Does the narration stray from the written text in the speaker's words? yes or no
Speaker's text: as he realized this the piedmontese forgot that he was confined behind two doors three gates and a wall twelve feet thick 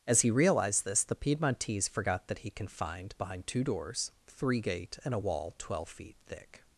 yes